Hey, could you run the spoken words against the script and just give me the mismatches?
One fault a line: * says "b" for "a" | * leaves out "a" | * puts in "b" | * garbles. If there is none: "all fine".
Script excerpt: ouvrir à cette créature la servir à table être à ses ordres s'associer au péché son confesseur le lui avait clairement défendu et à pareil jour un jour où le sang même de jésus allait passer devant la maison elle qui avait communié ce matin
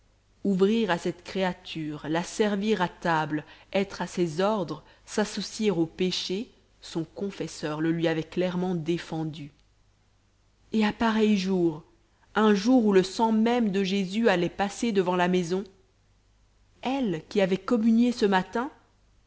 all fine